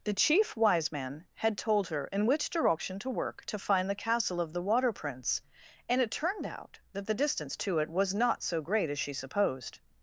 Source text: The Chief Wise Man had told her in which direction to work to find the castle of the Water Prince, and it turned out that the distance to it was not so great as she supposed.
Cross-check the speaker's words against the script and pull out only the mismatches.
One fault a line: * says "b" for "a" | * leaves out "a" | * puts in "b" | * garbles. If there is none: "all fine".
all fine